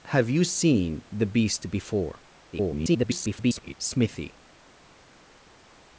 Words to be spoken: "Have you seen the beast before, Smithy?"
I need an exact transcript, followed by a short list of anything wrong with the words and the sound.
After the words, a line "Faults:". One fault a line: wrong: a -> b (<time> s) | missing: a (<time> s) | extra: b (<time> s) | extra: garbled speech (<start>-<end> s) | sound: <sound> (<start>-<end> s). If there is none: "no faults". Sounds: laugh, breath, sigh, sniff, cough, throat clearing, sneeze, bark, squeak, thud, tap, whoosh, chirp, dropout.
"Have you seen the beast before, [garbled] Smithy?"
Faults:
extra: garbled speech (2.5-3.7 s)